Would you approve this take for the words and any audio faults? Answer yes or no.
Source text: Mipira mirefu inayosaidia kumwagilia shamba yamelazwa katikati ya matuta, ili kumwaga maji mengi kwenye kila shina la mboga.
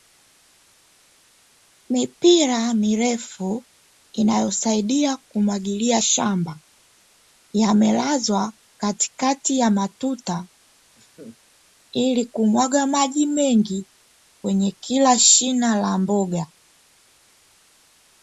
no